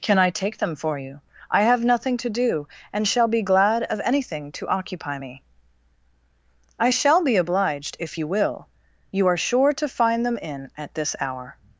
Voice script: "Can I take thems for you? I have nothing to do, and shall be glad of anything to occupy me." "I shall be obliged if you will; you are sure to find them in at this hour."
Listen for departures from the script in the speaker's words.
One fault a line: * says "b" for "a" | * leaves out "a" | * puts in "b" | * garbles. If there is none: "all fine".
* says "them" for "thems"